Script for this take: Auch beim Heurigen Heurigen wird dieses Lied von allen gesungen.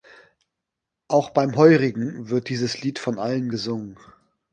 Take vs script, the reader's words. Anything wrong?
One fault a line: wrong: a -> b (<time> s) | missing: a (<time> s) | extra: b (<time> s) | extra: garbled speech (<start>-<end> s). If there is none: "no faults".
missing: Heurigen (2.3 s)